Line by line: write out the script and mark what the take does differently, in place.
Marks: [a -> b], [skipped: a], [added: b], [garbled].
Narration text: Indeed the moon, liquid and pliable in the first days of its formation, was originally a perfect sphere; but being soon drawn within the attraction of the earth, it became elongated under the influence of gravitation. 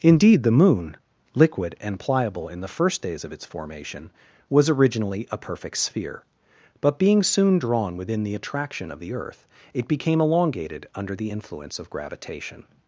Indeed the moon, liquid and pliable in the first days of its formation, was originally a perfect sphere; but being soon drawn within the attraction of the earth, it became elongated under the influence of gravitation.